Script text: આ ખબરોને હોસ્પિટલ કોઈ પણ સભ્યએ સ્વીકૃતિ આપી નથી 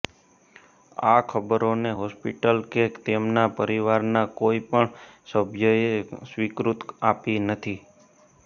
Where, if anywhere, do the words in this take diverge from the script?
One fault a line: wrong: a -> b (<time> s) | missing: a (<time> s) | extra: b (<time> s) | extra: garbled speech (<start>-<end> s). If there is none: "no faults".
extra: કે તેમના પરિવારના (2.7 s)